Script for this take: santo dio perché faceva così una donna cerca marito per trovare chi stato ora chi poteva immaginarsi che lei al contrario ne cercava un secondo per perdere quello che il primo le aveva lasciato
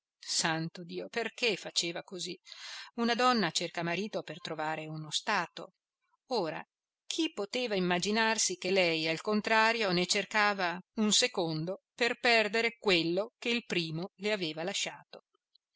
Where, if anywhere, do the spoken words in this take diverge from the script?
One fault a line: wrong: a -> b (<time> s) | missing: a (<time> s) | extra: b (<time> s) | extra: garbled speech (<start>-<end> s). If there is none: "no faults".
wrong: chi -> uno (4.9 s)